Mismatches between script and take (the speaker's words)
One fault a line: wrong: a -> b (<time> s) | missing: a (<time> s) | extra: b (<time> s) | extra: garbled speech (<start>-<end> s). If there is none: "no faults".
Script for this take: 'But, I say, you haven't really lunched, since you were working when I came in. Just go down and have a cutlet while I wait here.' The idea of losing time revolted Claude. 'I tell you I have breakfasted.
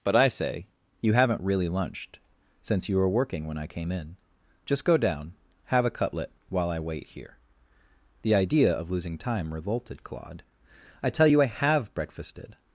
missing: and (5.3 s)